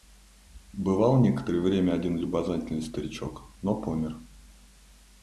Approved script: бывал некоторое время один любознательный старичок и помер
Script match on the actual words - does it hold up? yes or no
no